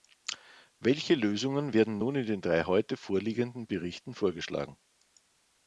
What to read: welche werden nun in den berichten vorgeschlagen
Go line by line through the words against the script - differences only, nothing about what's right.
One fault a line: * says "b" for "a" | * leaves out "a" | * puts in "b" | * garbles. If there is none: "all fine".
* puts in "lösungen"
* puts in "drei heute vorliegenden"